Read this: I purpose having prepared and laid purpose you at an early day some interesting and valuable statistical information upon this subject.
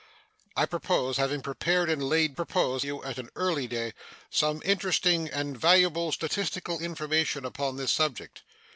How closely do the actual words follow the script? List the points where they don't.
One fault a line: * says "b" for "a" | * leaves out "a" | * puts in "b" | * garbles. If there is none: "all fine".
all fine